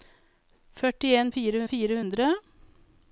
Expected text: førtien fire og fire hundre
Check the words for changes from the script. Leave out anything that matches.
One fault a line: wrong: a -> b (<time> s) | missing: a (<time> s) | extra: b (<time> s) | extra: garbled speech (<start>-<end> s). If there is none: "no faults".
no faults